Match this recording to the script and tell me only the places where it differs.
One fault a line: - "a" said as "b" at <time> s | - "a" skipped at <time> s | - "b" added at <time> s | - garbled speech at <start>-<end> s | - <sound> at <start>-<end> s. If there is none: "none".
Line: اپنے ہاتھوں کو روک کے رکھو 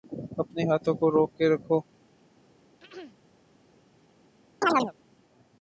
- throat clearing at 2.8-3.2 s
- chirp at 4.6-4.9 s